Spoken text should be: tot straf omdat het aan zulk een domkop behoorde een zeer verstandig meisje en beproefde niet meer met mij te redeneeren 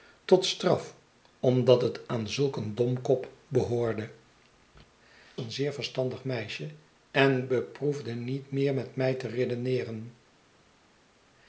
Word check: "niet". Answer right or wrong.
right